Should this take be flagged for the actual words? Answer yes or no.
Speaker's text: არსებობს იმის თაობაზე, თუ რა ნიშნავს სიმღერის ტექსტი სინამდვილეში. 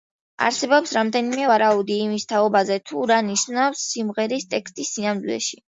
yes